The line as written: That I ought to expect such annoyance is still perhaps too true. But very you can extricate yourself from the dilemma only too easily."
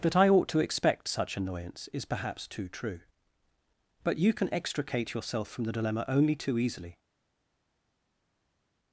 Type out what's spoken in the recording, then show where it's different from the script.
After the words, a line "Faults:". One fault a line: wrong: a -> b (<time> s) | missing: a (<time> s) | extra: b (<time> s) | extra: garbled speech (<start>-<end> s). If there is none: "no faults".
That I ought to expect such annoyance is perhaps too true. But you can extricate yourself from the dilemma only too easily."
Faults:
missing: still (2.0 s)
missing: very (4.2 s)